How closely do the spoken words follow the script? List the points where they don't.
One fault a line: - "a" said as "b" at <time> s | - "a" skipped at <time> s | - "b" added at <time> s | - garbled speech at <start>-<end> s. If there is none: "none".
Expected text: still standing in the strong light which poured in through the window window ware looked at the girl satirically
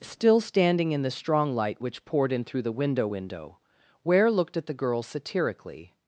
none